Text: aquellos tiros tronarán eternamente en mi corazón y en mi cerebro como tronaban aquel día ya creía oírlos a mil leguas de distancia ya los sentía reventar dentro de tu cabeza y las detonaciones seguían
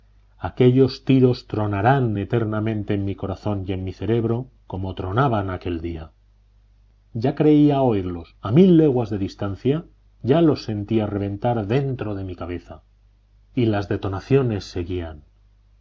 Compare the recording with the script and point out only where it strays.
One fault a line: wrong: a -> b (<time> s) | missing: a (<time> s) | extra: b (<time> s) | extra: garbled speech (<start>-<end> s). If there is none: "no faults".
wrong: tu -> mi (12.2 s)